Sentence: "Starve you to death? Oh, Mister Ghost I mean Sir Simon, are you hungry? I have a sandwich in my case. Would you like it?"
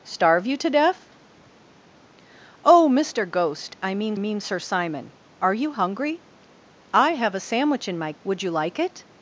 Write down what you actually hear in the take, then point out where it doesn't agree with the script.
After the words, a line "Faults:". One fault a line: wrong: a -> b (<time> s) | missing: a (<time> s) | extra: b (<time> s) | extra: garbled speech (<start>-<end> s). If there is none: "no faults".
"Starve you to death? Oh, Mister Ghost I mean mean Sir Simon, are you hungry? I have a sandwich in my. Would you like it?"
Faults:
extra: mean (4.2 s)
missing: case (8.1 s)